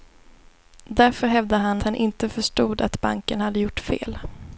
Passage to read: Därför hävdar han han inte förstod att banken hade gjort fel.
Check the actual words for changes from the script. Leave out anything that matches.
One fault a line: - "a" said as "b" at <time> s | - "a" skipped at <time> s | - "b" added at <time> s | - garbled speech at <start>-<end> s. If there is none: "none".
none